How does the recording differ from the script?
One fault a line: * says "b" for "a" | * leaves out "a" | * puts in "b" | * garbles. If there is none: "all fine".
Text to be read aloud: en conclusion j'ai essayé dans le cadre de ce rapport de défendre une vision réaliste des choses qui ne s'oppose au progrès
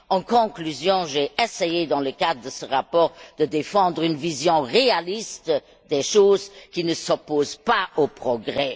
* puts in "pas"